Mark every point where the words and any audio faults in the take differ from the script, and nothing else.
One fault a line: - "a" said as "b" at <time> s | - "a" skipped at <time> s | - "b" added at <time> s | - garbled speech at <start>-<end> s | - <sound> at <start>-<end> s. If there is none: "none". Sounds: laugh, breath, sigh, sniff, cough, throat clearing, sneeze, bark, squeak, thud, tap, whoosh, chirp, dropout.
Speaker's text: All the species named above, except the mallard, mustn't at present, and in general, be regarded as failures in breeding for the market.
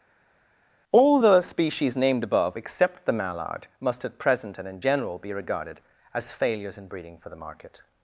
- "mustn't" said as "must" at 3.8 s